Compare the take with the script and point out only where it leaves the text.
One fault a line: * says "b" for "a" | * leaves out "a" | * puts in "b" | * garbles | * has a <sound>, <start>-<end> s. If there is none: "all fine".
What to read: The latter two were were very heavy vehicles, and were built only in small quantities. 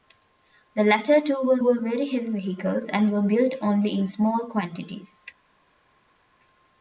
all fine